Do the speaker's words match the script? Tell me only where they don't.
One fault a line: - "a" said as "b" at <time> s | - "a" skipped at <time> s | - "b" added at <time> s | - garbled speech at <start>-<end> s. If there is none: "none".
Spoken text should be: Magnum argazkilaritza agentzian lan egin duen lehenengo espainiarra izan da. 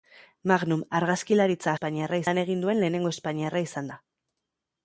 - "agentzian" said as "espainiarra" at 1.7 s